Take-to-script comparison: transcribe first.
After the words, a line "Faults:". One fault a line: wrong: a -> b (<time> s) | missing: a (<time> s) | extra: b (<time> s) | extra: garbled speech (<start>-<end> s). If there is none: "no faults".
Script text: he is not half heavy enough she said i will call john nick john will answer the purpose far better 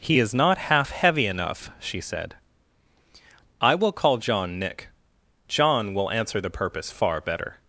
he is not half heavy enough she said i will call john nick john will answer the purpose far better
Faults:
no faults